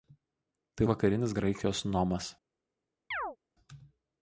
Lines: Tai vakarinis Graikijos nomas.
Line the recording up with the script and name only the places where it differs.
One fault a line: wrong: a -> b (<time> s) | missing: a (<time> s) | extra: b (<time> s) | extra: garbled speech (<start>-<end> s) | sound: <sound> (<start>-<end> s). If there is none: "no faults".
sound: chirp (3.1-3.4 s)